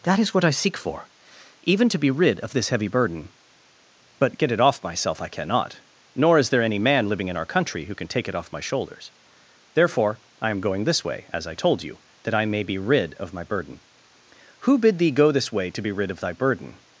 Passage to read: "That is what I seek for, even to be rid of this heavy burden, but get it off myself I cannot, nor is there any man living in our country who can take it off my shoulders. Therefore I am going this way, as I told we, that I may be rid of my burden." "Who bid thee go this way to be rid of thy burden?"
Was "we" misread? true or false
true